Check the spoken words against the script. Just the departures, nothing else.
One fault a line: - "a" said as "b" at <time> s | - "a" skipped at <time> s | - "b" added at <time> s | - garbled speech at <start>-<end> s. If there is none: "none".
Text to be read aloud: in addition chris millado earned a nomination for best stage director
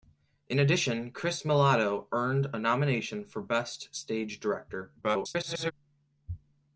- garbled speech at 5.0-5.7 s